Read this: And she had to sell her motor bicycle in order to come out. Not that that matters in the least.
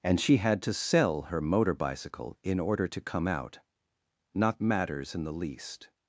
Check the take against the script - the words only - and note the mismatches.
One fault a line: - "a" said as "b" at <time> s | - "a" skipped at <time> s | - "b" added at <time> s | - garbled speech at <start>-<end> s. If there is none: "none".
- "that that" skipped at 4.6 s